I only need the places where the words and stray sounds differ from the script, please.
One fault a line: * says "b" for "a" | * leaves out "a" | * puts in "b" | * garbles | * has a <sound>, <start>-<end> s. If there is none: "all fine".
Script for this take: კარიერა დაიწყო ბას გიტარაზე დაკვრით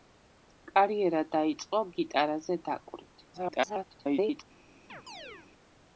* leaves out "ბას"
* garbles
* has a chirp, 4.9-5.5 s